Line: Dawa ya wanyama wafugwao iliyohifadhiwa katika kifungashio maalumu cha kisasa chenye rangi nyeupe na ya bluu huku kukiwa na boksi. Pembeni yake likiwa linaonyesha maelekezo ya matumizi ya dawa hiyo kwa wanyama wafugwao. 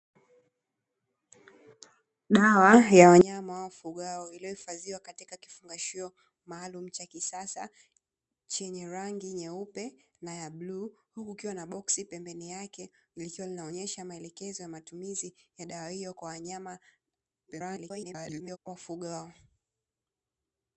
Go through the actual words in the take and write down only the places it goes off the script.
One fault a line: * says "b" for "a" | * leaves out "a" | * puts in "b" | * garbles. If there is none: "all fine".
* garbles